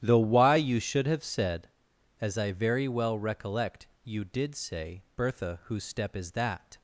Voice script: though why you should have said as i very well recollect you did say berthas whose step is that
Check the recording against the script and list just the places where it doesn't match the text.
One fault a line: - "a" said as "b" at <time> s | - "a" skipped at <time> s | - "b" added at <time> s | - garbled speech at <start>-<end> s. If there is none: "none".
- "berthas" said as "bertha" at 5.2 s